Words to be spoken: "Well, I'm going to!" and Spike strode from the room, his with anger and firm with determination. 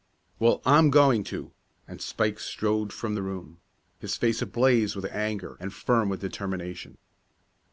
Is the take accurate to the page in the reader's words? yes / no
no